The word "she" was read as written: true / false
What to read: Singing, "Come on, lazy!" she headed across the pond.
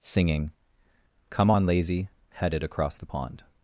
false